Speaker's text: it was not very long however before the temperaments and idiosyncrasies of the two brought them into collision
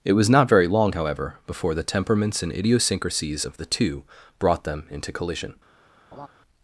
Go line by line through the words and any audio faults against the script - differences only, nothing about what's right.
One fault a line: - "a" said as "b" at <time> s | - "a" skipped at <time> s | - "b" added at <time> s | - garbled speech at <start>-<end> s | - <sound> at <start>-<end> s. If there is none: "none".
- laugh at 6.1-6.3 s